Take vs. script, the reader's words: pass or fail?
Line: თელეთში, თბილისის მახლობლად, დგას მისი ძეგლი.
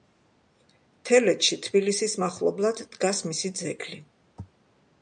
pass